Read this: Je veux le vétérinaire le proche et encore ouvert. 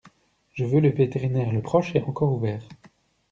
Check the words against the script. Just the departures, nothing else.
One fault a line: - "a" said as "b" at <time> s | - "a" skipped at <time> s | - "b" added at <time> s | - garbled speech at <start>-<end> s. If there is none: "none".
none